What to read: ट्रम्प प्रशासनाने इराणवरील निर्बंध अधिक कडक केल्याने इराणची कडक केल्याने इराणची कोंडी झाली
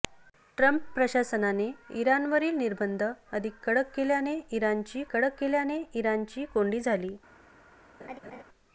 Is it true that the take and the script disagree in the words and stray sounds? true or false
true